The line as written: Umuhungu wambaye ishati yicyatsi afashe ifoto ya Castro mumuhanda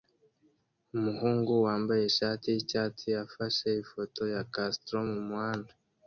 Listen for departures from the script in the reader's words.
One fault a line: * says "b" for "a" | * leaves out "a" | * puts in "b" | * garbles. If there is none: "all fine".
all fine